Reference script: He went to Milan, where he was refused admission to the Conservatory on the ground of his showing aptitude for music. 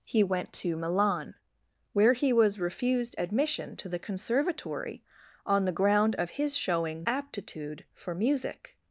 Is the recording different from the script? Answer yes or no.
no